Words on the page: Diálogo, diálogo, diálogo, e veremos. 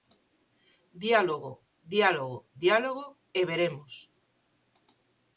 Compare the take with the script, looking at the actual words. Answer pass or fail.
pass